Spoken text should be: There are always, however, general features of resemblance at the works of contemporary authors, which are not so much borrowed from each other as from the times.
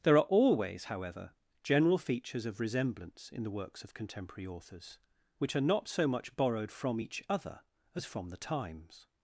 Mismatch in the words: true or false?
true